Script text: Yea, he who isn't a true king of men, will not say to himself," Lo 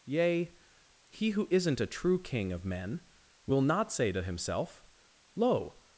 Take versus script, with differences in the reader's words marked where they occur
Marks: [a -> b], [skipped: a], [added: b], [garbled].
Yea, he who isn't a true king of men, will not say to himself," Lo